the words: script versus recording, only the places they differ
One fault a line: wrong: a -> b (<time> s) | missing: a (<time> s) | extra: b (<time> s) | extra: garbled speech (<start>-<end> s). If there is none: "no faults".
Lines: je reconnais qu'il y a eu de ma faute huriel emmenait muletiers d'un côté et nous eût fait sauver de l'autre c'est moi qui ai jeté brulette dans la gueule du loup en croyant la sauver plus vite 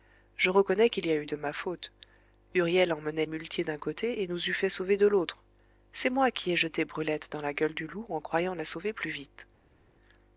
no faults